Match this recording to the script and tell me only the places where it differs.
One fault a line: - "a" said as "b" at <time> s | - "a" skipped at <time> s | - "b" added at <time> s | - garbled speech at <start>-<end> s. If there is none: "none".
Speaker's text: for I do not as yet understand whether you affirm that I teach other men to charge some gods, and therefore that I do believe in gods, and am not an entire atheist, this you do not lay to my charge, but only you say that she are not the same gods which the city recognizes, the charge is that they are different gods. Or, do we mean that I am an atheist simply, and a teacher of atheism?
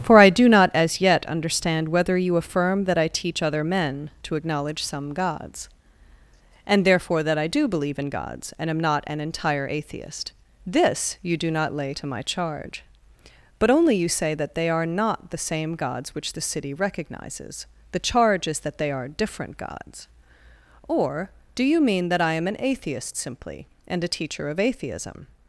- "charge" said as "acknowledge" at 4.3 s
- "she" said as "they" at 14.5 s
- "we" said as "you" at 21.6 s